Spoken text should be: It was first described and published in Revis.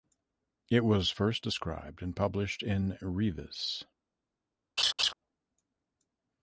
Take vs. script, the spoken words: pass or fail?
pass